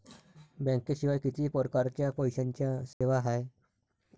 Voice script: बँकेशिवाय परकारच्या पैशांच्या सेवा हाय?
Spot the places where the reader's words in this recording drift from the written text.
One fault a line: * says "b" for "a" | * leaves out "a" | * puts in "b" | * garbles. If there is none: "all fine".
* puts in "किती"